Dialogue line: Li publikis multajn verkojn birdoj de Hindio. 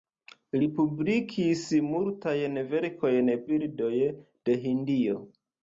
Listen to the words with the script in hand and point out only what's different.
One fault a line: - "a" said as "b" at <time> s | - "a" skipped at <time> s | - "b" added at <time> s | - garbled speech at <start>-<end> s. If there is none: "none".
none